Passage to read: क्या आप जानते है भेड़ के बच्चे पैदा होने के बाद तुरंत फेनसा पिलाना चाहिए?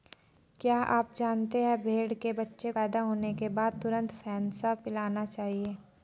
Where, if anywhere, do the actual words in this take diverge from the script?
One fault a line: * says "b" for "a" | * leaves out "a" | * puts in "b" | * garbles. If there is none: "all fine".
all fine